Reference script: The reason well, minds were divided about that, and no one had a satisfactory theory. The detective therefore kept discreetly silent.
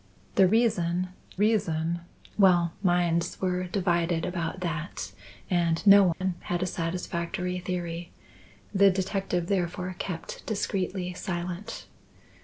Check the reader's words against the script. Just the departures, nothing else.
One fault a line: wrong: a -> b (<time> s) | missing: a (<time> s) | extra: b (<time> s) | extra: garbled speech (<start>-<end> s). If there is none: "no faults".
extra: reason (1.3 s)